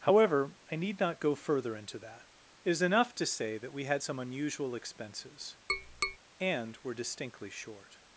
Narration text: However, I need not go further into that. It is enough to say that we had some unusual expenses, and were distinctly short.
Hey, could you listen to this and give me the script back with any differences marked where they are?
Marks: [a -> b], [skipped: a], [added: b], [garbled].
However, I need not go further into that. It is enough to say that we had some unusual expenses, and were distinctly short.